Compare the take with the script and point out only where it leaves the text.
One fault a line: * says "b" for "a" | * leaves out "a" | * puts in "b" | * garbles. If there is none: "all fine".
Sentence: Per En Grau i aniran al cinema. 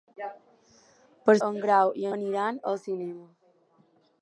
all fine